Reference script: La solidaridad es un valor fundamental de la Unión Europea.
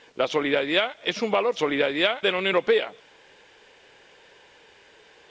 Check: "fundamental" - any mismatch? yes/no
yes